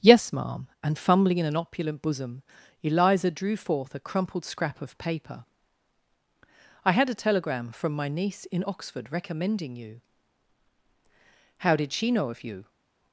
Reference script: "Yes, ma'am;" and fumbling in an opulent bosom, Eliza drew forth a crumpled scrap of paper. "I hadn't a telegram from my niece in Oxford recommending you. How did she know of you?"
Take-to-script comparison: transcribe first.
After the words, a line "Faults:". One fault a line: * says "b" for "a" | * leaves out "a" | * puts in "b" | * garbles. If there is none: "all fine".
"Yes, ma'am;" and fumbling in an opulent bosom, Eliza drew forth a crumpled scrap of paper. "I had a telegram from my niece in Oxford recommending you. How did she know of you?"
Faults:
* says "had" for "hadn't"